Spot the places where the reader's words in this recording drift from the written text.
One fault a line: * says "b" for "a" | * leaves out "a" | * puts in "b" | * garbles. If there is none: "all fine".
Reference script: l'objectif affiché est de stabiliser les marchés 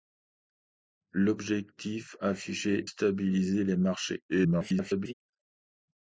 * leaves out "est de"
* garbles